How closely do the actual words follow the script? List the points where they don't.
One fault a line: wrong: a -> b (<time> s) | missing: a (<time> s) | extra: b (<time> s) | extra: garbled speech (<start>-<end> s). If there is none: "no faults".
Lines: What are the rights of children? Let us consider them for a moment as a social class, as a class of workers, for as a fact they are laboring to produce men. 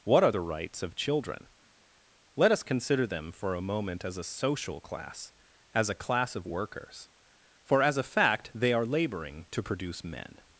no faults